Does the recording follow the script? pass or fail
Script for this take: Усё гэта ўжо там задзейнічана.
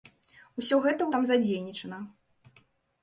fail